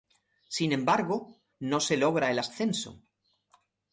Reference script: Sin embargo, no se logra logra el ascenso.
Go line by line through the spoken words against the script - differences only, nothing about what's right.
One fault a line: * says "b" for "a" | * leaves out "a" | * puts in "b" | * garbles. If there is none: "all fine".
* leaves out "logra"